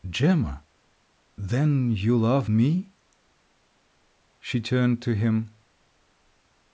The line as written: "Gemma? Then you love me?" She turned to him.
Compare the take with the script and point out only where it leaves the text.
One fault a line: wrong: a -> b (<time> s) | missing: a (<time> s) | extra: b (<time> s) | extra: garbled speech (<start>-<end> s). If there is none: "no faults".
no faults